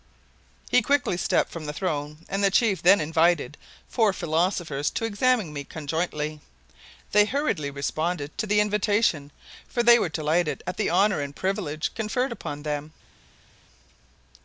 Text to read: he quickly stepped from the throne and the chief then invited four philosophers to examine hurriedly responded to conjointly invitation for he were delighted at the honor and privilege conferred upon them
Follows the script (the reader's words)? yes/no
no